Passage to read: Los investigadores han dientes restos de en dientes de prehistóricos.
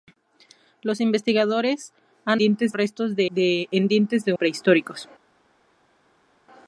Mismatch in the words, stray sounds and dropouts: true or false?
false